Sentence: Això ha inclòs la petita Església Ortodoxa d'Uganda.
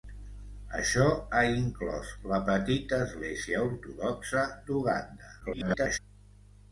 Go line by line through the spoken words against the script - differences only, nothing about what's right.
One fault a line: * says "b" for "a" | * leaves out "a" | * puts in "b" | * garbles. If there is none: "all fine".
* garbles